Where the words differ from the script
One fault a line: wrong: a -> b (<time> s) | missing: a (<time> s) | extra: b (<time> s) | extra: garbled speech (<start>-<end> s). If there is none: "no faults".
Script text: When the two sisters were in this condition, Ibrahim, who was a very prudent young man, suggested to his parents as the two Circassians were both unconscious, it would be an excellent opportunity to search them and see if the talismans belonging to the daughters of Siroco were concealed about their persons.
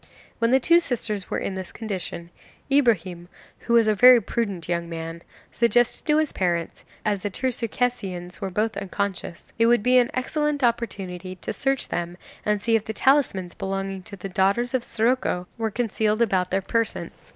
no faults